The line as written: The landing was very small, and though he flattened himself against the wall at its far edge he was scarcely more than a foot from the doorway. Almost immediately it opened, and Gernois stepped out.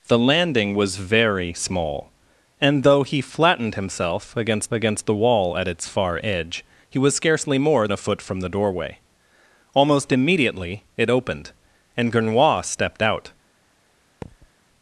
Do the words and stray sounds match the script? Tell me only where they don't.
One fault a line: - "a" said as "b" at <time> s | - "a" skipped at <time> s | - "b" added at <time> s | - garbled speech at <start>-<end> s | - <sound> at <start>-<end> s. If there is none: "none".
- "against" added at 4.7 s
- "than" skipped at 7.9 s
- thud at 14.2-14.5 s